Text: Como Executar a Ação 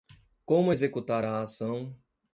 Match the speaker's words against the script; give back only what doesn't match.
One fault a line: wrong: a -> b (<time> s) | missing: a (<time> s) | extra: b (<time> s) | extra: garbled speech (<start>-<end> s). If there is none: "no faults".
no faults